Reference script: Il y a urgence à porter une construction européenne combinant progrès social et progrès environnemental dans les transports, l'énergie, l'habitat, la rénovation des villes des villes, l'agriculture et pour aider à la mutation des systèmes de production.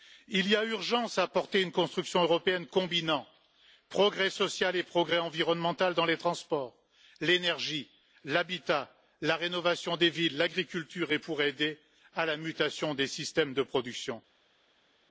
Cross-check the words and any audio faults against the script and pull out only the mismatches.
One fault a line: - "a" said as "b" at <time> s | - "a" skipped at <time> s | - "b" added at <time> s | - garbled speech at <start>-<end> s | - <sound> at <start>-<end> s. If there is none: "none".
- "des villes" skipped at 10.4 s